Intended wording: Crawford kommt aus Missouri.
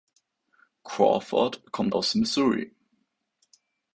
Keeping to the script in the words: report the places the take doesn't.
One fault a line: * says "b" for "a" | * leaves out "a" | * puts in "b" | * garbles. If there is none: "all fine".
all fine